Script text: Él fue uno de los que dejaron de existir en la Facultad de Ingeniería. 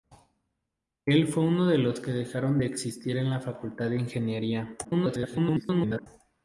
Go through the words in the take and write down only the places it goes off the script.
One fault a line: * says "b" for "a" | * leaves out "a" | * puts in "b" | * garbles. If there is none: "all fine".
* garbles